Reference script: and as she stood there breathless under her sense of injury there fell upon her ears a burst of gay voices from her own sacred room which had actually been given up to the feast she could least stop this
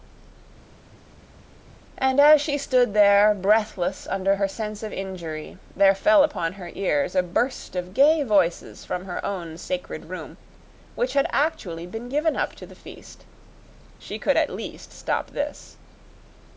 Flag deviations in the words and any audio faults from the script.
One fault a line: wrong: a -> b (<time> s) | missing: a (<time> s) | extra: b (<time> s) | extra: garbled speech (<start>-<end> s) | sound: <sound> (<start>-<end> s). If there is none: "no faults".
extra: at (14.4 s)